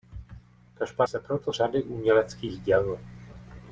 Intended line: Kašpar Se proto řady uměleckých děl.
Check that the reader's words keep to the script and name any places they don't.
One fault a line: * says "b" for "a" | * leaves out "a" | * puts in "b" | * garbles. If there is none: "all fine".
all fine